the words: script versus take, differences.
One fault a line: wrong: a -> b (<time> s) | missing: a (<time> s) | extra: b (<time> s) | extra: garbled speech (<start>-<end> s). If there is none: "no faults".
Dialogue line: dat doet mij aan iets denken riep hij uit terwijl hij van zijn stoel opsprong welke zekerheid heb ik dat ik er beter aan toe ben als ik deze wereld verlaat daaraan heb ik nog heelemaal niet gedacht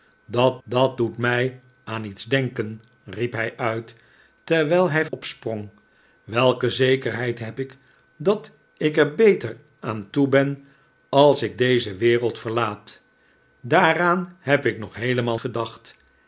extra: dat (0.6 s)
missing: van zijn stoel (5.1 s)
missing: niet (15.4 s)